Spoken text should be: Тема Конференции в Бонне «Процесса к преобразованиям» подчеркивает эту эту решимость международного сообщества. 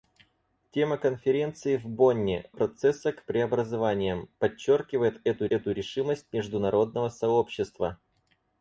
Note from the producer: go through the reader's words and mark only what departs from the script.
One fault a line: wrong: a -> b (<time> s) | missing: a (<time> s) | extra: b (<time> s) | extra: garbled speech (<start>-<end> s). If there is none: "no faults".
no faults